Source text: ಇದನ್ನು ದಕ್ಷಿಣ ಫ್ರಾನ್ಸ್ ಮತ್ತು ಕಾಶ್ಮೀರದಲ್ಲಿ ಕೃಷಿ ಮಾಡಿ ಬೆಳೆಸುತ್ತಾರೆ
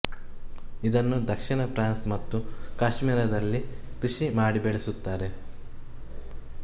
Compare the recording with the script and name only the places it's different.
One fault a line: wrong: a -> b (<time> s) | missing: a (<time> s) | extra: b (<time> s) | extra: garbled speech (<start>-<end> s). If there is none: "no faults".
no faults